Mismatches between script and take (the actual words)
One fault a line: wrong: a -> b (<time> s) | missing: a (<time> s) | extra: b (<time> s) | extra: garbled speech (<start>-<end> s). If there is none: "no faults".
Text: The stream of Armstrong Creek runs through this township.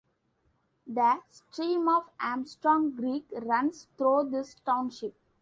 no faults